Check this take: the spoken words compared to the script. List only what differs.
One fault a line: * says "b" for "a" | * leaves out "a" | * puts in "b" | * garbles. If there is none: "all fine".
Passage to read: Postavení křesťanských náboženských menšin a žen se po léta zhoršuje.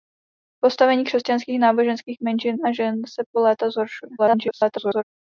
* garbles